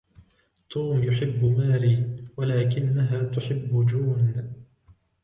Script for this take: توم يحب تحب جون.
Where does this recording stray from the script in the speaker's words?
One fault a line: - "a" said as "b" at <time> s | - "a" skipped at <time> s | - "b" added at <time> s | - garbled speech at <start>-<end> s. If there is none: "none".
- "ماري ولكنها" added at 1.4 s